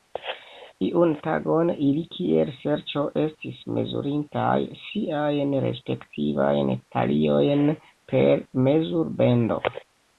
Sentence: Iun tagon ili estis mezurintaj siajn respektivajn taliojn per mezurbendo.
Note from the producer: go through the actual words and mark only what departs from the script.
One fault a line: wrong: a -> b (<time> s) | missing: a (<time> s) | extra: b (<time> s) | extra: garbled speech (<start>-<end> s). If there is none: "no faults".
extra: kiel ŝerco (2.1 s)